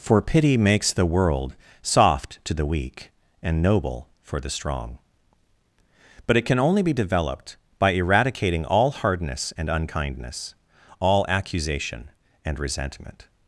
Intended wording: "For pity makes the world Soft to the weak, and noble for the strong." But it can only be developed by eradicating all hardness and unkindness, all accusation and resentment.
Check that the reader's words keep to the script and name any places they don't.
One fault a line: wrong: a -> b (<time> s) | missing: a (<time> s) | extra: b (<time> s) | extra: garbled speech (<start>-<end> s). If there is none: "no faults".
no faults